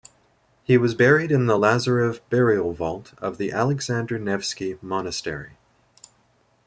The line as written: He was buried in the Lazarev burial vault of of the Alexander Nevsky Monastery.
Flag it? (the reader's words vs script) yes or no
yes